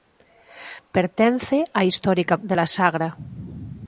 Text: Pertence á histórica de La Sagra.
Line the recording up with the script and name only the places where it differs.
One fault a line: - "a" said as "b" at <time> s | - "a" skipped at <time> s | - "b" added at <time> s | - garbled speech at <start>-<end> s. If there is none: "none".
none